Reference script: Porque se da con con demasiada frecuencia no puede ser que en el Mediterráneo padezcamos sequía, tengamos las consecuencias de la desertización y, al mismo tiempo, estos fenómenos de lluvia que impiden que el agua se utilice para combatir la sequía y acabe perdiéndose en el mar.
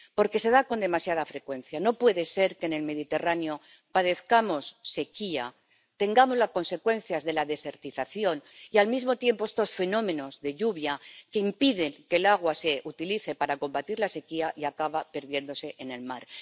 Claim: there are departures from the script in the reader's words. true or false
true